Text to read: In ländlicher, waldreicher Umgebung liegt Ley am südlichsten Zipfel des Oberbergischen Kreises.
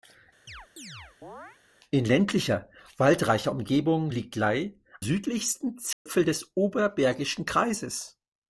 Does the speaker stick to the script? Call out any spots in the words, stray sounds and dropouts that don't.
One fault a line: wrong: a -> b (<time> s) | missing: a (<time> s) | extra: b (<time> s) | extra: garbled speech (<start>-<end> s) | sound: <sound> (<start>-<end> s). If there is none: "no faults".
sound: chirp (0.5-1.6 s)
missing: am (4.8 s)
sound: dropout (5.9-6.1 s)